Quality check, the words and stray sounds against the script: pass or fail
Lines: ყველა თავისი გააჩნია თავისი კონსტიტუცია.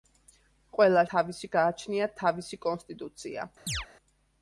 fail